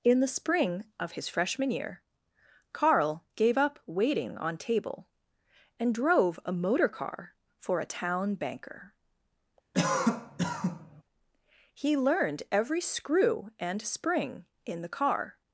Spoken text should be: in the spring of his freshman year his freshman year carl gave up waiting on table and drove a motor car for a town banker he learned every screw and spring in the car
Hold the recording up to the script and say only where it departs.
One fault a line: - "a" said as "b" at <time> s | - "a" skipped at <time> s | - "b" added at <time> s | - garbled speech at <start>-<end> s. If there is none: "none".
- "his freshman year" skipped at 2.0 s